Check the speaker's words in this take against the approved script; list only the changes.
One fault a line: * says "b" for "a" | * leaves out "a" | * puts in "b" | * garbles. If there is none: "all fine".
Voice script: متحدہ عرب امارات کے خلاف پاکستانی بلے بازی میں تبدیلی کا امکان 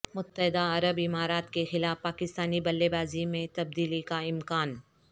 all fine